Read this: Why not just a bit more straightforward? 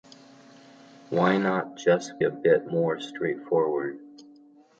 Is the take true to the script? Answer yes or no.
yes